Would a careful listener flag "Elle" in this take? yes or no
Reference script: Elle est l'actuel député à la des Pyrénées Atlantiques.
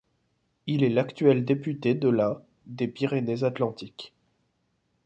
yes